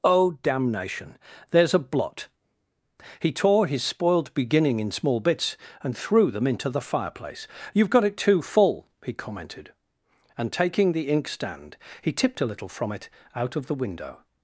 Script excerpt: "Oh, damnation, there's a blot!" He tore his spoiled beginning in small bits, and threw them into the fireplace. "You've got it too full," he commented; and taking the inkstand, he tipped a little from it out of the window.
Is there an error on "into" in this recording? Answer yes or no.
no